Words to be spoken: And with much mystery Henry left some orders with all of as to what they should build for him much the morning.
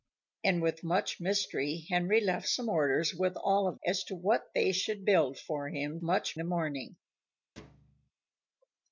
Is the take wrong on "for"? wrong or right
right